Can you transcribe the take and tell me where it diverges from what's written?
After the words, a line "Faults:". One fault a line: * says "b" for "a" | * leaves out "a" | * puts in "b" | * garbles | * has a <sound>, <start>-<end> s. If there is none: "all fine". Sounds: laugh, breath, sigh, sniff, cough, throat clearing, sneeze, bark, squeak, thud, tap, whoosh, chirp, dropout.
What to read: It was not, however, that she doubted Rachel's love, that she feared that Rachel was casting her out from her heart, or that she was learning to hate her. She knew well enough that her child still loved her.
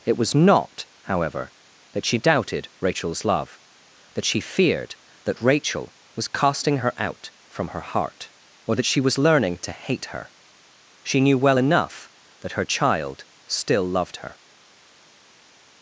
It was not, however, that she doubted Rachel's love, that she feared that Rachel was casting her out from her heart, or that she was learning to hate her. She knew well enough that her child still loved her.
Faults:
all fine